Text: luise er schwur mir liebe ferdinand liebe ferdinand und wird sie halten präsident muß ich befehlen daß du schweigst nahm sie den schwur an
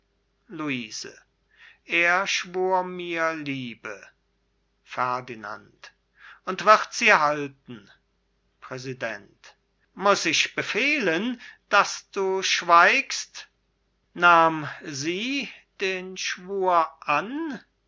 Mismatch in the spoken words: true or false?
true